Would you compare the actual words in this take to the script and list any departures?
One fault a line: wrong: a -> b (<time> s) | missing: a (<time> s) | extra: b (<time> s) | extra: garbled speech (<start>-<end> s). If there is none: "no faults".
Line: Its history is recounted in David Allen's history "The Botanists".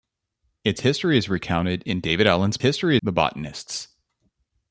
no faults